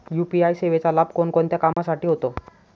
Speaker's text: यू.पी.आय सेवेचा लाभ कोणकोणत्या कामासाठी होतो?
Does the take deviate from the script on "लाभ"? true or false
false